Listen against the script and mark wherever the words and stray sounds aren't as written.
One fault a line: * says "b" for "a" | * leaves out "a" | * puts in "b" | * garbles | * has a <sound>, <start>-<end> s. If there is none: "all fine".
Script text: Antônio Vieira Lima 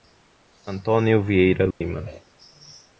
* has a dropout, 1.7-1.8 s